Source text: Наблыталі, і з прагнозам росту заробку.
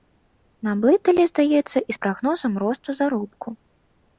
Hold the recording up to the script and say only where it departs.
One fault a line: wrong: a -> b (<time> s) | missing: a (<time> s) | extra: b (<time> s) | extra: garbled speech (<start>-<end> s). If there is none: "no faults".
extra: здаецца (1.3 s)